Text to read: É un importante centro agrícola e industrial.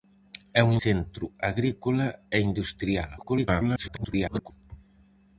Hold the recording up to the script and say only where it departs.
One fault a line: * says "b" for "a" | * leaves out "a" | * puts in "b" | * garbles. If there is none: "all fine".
* leaves out "importante"
* garbles